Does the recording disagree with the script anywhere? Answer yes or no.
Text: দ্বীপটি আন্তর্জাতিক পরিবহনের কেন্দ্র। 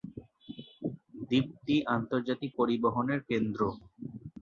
no